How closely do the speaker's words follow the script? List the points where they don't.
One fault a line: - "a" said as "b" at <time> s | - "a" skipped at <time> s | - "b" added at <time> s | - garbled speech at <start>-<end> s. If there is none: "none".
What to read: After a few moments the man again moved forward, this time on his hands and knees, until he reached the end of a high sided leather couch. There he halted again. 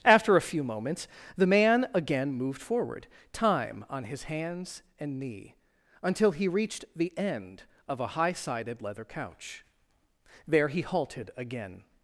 - "this" skipped at 3.1 s
- "knees" said as "knee" at 5.2 s